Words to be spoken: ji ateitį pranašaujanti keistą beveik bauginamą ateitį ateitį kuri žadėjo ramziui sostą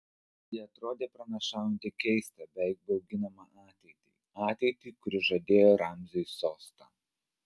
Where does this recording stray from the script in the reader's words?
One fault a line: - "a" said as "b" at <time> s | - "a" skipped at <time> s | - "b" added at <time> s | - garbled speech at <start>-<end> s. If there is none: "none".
- "ateitį" said as "atrodė" at 0.6 s